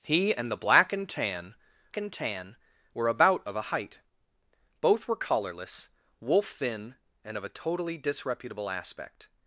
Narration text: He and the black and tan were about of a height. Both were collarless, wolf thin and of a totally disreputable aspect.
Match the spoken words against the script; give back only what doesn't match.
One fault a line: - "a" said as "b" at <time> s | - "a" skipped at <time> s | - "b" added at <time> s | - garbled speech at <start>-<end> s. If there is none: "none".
- "and tan" added at 2.0 s